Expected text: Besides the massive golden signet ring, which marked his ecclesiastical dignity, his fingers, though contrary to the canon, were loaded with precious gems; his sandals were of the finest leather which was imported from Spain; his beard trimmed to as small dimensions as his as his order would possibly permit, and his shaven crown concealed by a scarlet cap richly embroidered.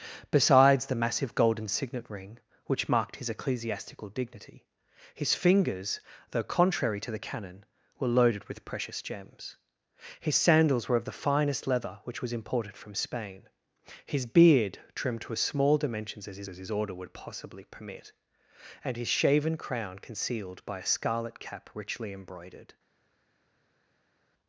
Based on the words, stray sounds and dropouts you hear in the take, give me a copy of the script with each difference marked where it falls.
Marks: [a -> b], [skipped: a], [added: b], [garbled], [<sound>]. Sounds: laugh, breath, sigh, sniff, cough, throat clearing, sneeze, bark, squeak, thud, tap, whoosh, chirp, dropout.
Besides the massive golden signet ring, which marked his ecclesiastical dignity, his fingers, though contrary to the canon, were loaded with precious gems; his sandals were of the finest leather which was imported from Spain; his beard trimmed to as small dimensions as his as his order would possibly permit, and his shaven crown concealed by a scarlet cap richly embroidered.